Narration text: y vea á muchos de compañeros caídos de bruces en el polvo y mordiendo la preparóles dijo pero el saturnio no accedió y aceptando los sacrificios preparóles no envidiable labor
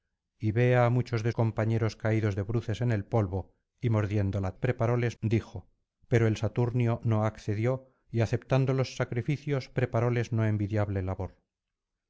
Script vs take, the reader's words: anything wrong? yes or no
no